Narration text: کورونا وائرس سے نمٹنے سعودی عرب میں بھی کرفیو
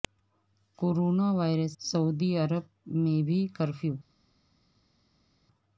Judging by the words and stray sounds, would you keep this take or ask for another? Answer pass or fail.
fail